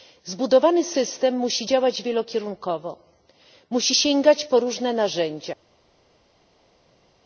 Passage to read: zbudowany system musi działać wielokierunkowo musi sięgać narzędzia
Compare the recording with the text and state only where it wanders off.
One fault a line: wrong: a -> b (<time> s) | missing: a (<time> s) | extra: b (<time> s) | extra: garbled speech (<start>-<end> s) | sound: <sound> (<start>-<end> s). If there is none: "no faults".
extra: po różne (4.5 s)